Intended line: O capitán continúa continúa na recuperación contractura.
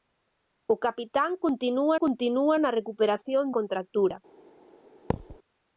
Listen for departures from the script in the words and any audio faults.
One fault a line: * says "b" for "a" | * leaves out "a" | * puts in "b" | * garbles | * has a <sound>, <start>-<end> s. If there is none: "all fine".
* has a thud, 5.1-5.4 s